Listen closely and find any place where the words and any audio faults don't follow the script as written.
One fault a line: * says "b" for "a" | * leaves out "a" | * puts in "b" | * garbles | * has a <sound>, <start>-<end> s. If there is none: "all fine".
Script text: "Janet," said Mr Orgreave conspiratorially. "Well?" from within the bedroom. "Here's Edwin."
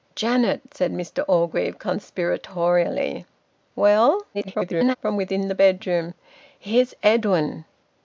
* garbles